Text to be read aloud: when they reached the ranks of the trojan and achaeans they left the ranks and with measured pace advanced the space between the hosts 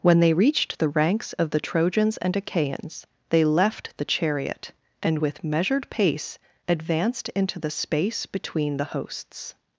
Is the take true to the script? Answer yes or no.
no